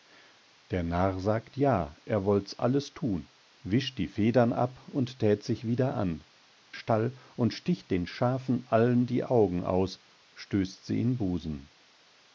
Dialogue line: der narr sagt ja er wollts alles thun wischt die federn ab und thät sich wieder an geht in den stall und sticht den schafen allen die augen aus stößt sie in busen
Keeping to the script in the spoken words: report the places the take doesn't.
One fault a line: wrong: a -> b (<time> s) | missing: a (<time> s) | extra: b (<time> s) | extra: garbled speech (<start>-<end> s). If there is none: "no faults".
missing: geht in den (6.2 s)